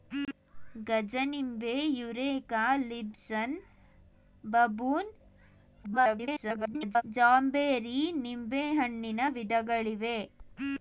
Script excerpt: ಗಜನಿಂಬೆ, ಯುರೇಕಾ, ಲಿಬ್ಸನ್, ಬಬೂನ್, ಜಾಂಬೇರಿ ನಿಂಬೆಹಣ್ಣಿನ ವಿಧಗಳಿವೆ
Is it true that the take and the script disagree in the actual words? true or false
true